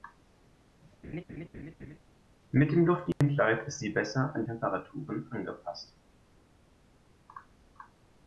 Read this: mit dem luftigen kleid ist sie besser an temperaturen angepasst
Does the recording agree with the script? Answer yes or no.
yes